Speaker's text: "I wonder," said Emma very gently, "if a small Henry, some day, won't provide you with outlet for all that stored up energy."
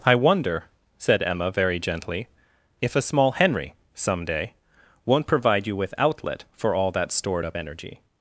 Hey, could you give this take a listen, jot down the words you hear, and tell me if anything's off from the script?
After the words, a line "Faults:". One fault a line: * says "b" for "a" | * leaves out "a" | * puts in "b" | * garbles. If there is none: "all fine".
"I wonder," said Emma very gently, "if a small Henry, some day, won't provide you with outlet for all that stored up energy."
Faults:
all fine